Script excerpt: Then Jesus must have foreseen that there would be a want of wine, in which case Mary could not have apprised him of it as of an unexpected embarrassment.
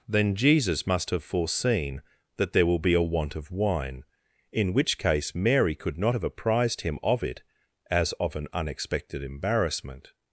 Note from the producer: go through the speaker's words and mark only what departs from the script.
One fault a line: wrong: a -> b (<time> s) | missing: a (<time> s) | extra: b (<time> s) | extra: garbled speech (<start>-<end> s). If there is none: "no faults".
wrong: would -> will (2.6 s)